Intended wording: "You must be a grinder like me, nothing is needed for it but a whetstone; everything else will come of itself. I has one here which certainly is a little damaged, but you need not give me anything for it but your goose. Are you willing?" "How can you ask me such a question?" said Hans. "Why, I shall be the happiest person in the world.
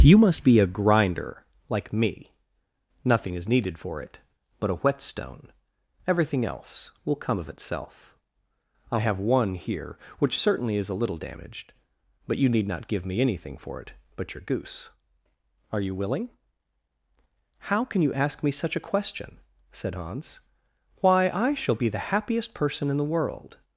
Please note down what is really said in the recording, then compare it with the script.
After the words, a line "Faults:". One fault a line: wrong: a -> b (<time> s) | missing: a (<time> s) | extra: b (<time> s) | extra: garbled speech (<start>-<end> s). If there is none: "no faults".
"You must be a grinder like me, nothing is needed for it but a whetstone; everything else will come of itself. I have one here which certainly is a little damaged, but you need not give me anything for it but your goose. Are you willing?" "How can you ask me such a question?" said Hans. "Why, I shall be the happiest person in the world.
Faults:
wrong: has -> have (9.0 s)